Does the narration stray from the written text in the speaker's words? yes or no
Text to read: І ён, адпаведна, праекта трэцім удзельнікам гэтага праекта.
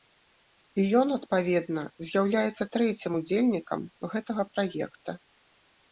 yes